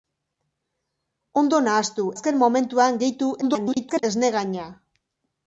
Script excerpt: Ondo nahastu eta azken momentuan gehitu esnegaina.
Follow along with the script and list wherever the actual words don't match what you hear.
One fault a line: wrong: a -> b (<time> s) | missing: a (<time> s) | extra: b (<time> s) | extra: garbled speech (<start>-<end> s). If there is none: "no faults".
missing: eta (2.1 s)
extra: garbled speech (3.4-4.0 s)